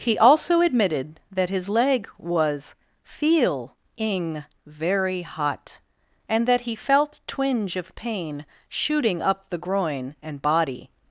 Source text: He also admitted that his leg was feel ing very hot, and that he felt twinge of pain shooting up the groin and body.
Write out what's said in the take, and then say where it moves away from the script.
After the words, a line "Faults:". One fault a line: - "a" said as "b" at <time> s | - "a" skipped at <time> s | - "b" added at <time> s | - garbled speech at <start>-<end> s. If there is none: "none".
He also admitted that his leg was feel ing very hot, and that he felt twinge of pain shooting up the groin and body.
Faults:
none